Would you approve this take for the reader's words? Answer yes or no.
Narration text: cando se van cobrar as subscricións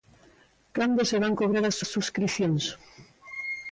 no